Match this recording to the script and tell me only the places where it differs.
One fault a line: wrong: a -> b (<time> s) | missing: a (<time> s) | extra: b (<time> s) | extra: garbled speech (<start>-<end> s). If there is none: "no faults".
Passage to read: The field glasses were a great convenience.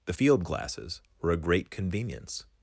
no faults